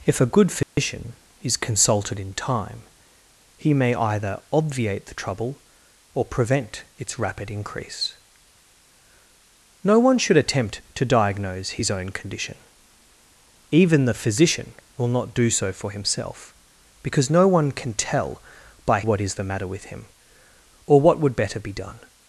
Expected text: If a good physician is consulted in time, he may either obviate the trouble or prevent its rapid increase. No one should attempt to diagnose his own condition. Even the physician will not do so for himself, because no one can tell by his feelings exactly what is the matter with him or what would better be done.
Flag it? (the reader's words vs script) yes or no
yes